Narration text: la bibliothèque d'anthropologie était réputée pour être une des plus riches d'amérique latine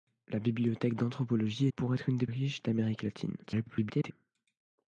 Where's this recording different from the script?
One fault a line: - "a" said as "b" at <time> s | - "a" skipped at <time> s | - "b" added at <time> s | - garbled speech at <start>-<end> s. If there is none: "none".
- "était réputée" skipped at 1.7 s
- "plus" skipped at 2.3 s
- garbled speech at 3.4-4.1 s